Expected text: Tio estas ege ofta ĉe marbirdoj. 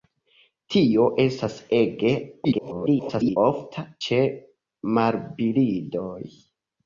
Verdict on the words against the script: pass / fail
fail